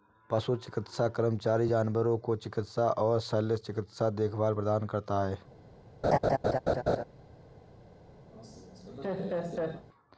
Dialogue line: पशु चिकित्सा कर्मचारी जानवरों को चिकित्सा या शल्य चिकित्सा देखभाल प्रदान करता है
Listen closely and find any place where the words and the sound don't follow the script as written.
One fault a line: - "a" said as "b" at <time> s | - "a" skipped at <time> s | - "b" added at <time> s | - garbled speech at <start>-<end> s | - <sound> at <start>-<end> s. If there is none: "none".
- "या" said as "और" at 3.0 s
- laugh at 6.0-7.0 s
- laugh at 8.3-9.9 s